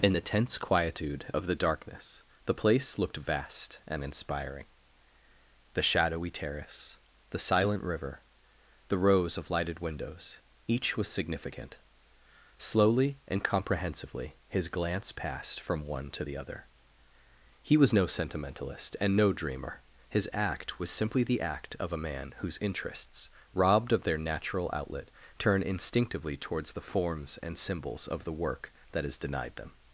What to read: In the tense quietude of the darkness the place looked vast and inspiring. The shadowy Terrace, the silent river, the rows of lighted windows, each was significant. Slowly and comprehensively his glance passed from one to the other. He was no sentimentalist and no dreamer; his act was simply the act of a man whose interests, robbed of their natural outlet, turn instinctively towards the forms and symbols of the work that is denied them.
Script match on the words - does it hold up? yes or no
yes